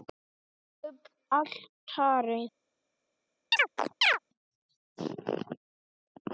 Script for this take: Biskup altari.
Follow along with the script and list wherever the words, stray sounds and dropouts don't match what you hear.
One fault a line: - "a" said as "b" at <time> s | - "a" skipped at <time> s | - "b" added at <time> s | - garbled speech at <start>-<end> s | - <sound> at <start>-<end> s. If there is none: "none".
- chirp at 3.5-4.2 s